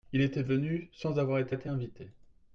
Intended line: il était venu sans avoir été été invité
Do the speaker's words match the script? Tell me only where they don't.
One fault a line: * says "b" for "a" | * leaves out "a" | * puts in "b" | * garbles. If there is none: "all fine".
all fine